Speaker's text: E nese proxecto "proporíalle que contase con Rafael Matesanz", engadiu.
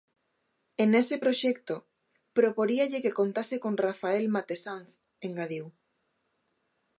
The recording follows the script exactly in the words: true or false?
true